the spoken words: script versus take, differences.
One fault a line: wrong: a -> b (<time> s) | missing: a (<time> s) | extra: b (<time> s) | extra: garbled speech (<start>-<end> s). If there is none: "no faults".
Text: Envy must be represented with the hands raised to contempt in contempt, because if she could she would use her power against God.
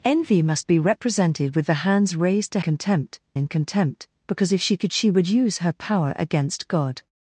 no faults